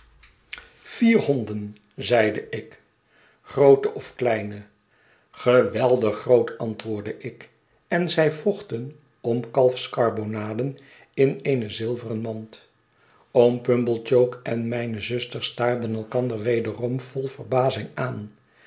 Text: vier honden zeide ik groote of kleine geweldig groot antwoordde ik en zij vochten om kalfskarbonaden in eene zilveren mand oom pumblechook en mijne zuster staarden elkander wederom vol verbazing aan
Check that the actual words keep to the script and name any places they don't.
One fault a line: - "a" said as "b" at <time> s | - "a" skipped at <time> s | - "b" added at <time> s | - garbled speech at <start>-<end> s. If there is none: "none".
none